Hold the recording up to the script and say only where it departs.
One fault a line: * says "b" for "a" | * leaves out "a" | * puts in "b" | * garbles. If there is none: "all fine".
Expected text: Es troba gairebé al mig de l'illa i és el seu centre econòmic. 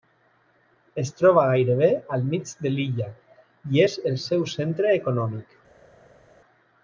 all fine